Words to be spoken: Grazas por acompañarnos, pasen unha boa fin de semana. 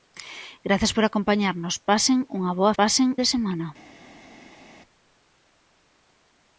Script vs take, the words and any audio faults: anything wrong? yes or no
yes